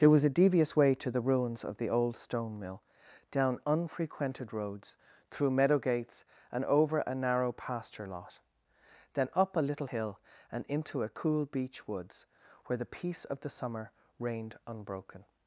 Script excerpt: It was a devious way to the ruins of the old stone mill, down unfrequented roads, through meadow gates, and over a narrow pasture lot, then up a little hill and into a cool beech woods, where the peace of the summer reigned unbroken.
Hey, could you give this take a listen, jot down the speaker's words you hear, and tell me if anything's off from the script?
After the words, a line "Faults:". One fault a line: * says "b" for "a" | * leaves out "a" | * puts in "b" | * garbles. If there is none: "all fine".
It was a devious way to the ruins of the old stone mill, down unfrequented roads, through meadow gates, and over a narrow pasture lot, then up a little hill and into a cool beech woods, where the peace of the summer reigned unbroken.
Faults:
all fine